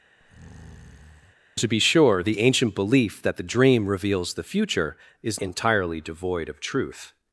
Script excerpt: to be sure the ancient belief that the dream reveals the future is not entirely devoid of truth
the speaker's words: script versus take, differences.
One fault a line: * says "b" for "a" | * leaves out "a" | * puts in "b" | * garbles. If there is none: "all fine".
* leaves out "not"